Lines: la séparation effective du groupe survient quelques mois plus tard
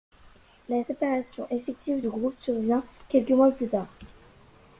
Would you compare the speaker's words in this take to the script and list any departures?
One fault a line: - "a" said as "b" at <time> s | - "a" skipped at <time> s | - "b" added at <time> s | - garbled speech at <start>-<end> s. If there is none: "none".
none